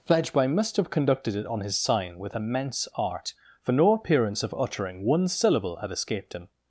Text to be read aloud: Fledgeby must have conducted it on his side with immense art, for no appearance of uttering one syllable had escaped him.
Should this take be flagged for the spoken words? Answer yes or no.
yes